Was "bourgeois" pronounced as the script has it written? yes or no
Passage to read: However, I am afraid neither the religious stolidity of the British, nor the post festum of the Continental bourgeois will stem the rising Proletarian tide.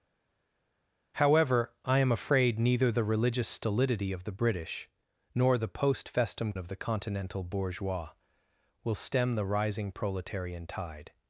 yes